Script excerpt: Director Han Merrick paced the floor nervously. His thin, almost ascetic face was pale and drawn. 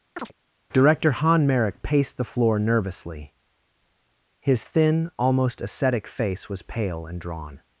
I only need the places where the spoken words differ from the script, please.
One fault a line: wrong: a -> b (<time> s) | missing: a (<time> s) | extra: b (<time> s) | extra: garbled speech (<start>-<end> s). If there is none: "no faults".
no faults